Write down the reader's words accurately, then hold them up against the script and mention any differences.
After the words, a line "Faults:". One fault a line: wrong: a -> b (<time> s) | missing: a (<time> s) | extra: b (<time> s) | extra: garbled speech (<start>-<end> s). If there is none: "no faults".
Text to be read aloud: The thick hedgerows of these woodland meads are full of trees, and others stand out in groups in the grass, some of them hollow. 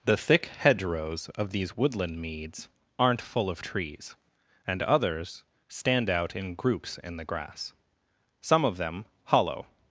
The thick hedgerows of these woodland meads aren't full of trees, and others stand out in groups in the grass, some of them hollow.
Faults:
wrong: are -> aren't (3.0 s)